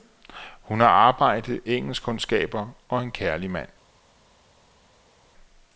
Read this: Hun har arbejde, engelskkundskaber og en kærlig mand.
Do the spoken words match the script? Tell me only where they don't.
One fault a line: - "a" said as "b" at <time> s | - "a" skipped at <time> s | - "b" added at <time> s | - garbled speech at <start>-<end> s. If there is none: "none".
none